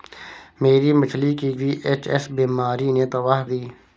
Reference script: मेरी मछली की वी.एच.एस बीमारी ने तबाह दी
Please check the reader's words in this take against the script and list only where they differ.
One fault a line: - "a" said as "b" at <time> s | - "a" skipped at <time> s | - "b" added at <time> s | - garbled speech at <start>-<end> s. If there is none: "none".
none